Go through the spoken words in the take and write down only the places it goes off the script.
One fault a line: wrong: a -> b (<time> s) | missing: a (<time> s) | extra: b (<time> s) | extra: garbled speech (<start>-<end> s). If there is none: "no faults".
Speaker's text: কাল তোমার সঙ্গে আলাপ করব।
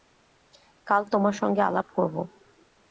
no faults